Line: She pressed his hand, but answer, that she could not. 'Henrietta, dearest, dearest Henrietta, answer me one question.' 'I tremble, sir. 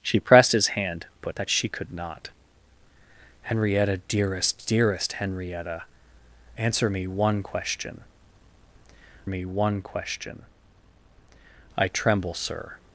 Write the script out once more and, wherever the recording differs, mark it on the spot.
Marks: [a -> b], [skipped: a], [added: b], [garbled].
She pressed his hand, but [skipped: answer,] that she could not. 'Henrietta, dearest, dearest Henrietta, answer me one question.' [added: me one question] 'I tremble, sir.